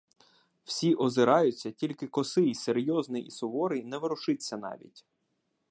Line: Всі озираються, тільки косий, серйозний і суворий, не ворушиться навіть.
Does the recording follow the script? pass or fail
pass